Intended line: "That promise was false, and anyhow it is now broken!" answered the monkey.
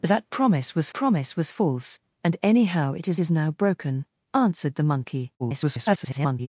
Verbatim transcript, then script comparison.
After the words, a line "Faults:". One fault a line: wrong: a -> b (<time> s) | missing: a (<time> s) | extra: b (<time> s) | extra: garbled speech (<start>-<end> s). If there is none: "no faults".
"That promise was promise was false, and anyhow it is is now broken!" answered the monkey. [garbled]
Faults:
extra: promise was (0.9 s)
extra: is (3.2 s)
extra: garbled speech (5.4-6.5 s)